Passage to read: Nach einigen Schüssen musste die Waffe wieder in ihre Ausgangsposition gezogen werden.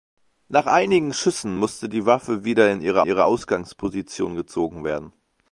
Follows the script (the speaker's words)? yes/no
no